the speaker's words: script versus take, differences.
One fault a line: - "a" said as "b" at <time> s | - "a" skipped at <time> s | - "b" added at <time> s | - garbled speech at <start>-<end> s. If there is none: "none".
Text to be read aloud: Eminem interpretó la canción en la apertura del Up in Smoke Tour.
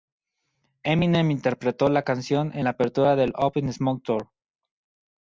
none